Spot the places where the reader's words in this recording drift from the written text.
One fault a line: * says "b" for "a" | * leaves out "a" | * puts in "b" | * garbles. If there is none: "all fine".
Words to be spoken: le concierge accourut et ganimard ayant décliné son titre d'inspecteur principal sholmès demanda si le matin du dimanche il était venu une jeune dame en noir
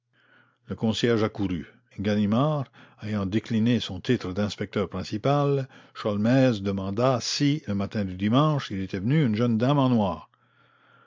* leaves out "et"